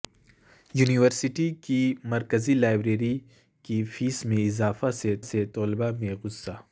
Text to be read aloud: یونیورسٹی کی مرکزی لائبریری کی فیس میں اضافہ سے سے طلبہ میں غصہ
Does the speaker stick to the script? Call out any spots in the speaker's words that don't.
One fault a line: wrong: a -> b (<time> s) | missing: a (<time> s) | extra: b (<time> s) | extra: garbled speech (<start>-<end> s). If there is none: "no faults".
no faults